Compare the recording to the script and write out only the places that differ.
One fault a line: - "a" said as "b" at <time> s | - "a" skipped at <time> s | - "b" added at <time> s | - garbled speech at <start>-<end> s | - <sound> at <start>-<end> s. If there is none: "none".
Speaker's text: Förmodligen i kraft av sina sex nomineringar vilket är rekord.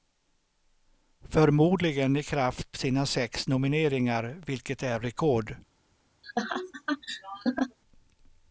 - "av" skipped at 2.8 s
- laugh at 6.2-7.8 s